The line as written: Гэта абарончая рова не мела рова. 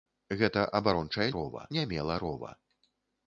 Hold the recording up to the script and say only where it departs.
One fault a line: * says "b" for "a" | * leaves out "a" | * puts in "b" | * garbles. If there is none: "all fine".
all fine